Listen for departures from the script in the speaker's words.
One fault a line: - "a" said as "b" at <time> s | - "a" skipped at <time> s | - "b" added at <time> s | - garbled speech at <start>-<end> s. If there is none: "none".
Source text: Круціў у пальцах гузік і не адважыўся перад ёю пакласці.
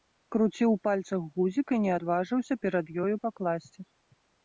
none